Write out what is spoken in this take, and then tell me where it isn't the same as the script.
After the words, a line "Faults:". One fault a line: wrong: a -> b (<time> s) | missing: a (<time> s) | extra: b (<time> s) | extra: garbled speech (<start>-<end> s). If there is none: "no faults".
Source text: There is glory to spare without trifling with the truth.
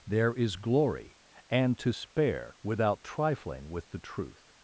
There is glory and to spare without trifling with the truth.
Faults:
extra: and (1.5 s)